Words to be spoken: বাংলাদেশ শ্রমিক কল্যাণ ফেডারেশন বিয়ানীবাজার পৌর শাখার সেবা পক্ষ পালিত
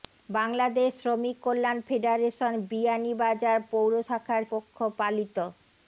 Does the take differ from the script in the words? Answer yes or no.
yes